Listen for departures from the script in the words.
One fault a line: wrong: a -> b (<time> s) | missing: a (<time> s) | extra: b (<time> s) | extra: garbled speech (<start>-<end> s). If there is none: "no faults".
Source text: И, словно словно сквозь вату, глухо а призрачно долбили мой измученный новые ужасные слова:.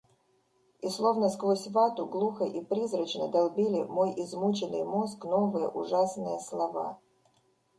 missing: словно (1.3 s)
wrong: а -> и (2.5 s)
extra: мозг (4.8 s)